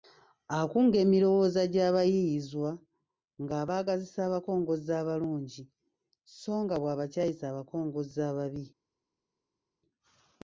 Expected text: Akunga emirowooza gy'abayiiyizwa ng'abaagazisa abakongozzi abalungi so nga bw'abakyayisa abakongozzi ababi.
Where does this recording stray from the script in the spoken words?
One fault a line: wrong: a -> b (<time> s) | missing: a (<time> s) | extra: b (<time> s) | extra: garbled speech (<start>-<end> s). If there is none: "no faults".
no faults